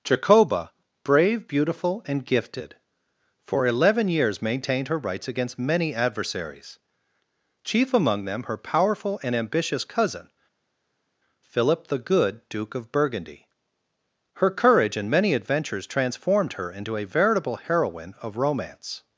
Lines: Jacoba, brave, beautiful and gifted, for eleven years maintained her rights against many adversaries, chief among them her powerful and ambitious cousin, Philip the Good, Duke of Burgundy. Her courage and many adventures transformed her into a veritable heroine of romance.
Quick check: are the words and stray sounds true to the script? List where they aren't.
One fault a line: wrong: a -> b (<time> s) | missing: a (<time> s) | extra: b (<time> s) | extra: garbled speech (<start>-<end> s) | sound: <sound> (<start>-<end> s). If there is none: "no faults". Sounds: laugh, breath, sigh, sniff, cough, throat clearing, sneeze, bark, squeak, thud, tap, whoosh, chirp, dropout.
no faults